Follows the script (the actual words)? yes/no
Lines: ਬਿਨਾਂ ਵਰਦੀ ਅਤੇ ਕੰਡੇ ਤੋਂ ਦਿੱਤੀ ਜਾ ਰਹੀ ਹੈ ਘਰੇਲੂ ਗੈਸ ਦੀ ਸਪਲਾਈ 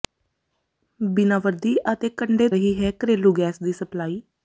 no